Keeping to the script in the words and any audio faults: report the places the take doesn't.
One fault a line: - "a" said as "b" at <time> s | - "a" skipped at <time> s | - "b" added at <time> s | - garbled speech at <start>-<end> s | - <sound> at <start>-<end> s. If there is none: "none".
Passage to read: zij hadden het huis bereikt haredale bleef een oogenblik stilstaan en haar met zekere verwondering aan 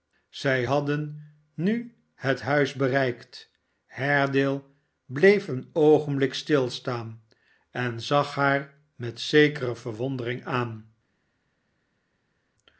- "nu" added at 1.5 s
- "zag" added at 8.0 s